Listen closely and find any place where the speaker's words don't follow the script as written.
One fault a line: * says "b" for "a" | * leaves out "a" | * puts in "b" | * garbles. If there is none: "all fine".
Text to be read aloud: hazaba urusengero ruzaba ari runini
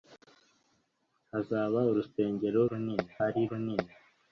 * says "runini" for "ruzaba"